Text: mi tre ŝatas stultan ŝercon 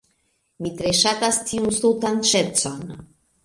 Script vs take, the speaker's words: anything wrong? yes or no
yes